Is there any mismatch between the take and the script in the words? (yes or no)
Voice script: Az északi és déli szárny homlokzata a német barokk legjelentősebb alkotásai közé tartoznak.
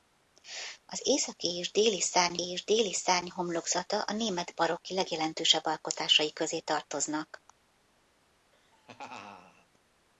yes